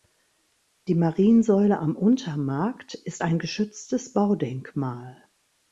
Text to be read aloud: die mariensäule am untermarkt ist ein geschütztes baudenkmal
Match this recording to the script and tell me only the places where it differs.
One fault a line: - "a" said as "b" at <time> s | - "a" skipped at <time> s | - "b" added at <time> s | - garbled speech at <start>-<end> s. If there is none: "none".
none